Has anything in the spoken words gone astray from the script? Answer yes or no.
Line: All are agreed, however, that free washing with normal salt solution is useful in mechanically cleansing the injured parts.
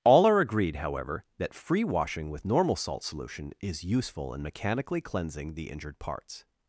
no